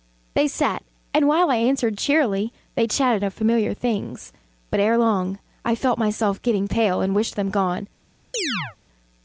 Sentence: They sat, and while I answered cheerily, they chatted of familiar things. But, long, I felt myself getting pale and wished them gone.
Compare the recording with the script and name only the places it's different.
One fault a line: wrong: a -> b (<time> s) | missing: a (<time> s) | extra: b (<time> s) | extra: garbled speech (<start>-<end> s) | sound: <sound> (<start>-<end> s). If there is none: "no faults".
extra: ere (4.8 s)
sound: chirp (8.3-8.8 s)